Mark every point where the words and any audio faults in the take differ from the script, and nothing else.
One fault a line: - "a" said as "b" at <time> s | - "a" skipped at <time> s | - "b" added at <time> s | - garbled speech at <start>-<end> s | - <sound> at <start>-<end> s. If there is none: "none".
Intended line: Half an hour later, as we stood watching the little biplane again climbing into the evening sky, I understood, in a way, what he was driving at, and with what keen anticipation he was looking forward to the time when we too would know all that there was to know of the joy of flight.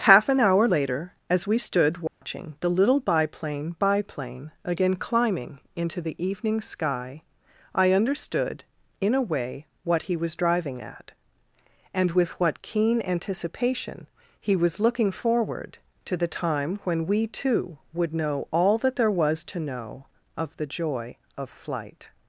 - dropout at 2.1-2.2 s
- "biplane" added at 3.8 s